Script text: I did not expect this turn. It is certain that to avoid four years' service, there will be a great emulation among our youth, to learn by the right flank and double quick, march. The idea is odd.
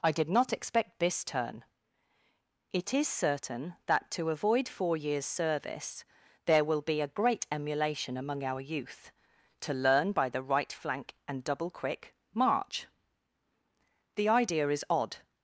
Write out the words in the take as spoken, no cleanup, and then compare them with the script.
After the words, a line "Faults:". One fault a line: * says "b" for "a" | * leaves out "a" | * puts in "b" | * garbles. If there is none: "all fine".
I did not expect this turn. It is certain that to avoid four years' service, there will be a great emulation among our youth, to learn by the right flank and double quick, march. The idea is odd.
Faults:
all fine